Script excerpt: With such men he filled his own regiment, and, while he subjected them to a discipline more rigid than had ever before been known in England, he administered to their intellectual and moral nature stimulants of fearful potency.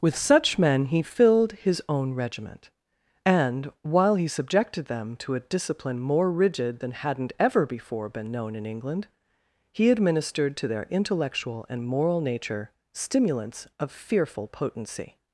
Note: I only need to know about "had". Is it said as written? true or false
false